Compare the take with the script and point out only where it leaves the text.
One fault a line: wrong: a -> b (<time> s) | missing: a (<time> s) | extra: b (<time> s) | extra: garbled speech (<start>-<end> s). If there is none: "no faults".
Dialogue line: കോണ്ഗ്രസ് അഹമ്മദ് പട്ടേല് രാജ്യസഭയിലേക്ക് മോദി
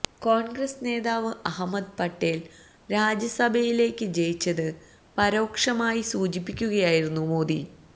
extra: നേതാവ് (0.8 s)
extra: ജയിച്ചത് പരോക്ഷമായി സൂചിപ്പിക്കുകയായിരുന്നു (4.1 s)